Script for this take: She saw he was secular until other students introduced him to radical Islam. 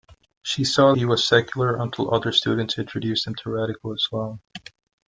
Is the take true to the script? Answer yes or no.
yes